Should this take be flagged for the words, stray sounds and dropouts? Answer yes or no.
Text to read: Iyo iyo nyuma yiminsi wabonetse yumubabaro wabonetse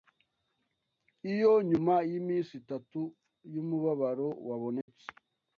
yes